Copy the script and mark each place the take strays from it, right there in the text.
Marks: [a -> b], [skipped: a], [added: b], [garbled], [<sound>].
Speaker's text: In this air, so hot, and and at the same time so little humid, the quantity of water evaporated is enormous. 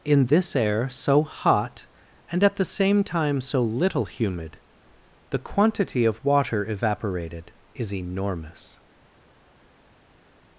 In this air, so hot, and [skipped: and] at the same time so little humid, the quantity of water evaporated is enormous.